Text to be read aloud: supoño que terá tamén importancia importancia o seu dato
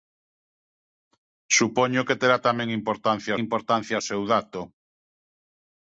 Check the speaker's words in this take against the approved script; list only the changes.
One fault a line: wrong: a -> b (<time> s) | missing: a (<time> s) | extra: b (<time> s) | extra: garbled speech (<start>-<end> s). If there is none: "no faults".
no faults